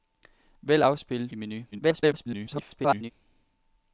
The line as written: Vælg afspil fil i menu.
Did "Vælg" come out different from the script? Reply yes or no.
no